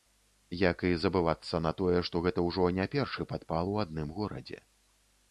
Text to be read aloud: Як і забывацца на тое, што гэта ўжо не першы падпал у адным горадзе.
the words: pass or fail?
pass